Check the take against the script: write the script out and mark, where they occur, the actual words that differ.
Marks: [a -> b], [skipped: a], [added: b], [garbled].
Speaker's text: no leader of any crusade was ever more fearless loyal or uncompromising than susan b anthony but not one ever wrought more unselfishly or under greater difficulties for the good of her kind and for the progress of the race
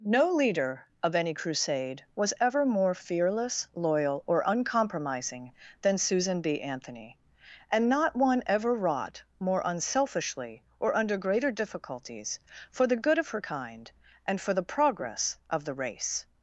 no leader of any crusade was ever more fearless loyal or uncompromising than susan b anthony [but -> and] not one ever wrought more unselfishly or under greater difficulties for the good of her kind and for the progress of the race